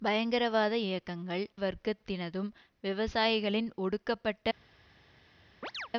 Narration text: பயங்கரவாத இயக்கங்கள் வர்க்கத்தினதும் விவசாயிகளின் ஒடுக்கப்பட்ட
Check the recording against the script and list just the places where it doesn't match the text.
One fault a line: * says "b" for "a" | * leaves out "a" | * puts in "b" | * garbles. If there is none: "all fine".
all fine